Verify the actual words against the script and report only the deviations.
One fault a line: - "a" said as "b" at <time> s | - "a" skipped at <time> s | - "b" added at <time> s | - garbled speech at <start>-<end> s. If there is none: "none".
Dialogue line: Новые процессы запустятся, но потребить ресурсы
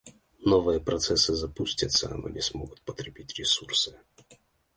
- "не смогут" added at 2.3 s